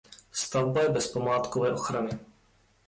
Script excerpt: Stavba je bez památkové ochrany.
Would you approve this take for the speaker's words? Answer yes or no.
yes